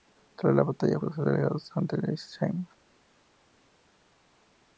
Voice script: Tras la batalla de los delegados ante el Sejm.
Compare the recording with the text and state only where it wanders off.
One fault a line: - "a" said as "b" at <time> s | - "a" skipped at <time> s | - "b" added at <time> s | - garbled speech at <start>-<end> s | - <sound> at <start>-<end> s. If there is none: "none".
none